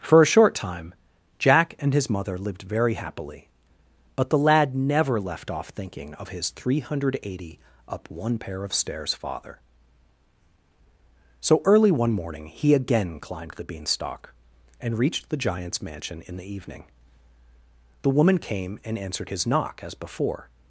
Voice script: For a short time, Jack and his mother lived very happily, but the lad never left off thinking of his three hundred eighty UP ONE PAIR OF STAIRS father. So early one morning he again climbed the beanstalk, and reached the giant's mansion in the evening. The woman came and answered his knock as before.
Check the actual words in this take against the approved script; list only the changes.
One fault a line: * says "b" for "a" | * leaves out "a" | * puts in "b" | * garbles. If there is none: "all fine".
all fine